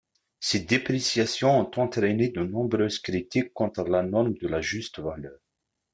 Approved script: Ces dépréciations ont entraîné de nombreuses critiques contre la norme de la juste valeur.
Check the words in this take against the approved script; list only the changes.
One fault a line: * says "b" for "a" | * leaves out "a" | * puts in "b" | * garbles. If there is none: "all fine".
all fine